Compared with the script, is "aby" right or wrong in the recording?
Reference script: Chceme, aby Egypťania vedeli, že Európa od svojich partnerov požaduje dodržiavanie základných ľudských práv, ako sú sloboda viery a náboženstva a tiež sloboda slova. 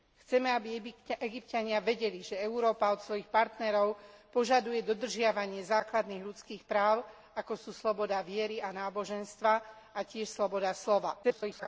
right